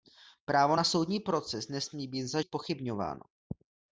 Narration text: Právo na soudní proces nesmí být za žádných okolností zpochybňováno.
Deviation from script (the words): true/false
true